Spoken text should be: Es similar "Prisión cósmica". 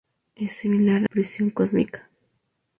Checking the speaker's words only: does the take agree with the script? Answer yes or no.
yes